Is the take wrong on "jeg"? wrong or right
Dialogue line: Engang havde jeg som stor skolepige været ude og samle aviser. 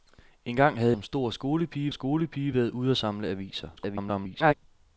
wrong